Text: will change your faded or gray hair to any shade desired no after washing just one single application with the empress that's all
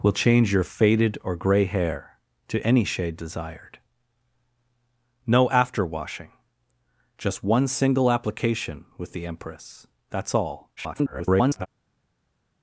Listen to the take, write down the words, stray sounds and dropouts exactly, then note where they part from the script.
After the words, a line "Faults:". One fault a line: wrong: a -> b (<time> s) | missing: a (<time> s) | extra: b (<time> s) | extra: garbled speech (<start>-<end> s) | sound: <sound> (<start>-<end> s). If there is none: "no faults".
will change your faded or gray hair to any shade desired no after washing just one single application with the empress that's all [garbled]
Faults:
extra: garbled speech (10.8-11.7 s)